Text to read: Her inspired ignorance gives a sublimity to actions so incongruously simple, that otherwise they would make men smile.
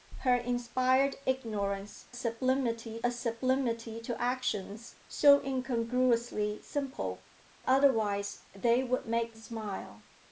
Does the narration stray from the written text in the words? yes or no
yes